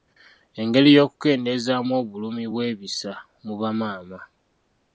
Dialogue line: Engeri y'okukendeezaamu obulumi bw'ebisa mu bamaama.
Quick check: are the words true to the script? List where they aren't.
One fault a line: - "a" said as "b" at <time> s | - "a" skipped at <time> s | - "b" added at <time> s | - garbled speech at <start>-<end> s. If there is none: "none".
none